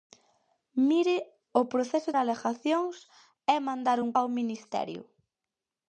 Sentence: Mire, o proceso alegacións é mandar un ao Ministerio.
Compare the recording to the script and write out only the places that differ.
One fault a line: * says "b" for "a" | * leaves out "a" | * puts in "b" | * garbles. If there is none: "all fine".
all fine